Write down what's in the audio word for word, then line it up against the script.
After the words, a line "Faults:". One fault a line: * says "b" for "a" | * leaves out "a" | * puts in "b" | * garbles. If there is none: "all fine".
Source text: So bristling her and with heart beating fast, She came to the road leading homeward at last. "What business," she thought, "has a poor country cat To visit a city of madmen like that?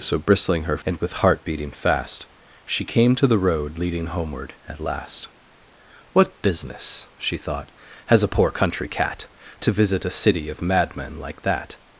So bristling her and with heart beating fast, She came to the road leading homeward at last. "What business," she thought, "has a poor country cat To visit a city of madmen like that?
Faults:
all fine